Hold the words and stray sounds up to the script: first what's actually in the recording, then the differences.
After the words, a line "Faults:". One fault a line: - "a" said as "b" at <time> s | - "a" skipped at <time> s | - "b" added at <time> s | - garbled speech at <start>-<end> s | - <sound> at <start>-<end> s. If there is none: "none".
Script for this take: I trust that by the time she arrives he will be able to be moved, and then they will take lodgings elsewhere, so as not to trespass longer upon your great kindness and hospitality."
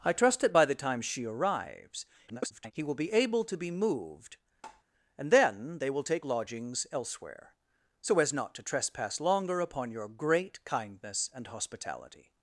I trust that by the time she arrives [garbled] he will be able to be moved, and then they will take lodgings elsewhere, so as not to trespass longer upon your great kindness and hospitality."
Faults:
- garbled speech at 2.3-2.7 s
- tap at 4.6-4.8 s